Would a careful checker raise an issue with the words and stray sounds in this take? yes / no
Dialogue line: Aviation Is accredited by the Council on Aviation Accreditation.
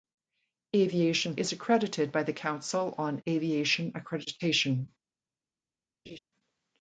yes